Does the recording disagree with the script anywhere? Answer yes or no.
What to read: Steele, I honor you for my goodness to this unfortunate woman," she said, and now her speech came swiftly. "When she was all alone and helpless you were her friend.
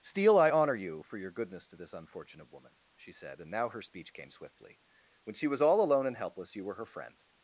yes